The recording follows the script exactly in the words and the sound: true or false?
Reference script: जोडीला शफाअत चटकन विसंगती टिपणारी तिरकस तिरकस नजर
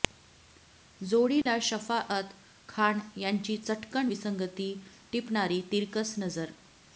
false